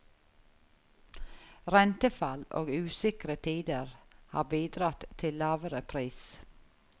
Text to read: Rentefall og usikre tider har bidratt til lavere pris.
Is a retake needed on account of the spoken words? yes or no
no